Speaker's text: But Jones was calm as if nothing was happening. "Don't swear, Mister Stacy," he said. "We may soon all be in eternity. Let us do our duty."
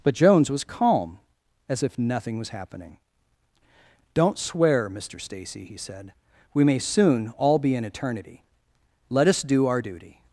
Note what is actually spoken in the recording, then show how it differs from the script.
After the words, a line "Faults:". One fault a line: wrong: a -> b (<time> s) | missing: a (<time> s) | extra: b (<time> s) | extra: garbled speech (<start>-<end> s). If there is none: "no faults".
But Jones was calm as if nothing was happening. "Don't swear, Mister Stacy," he said. "We may soon all be in eternity. Let us do our duty."
Faults:
no faults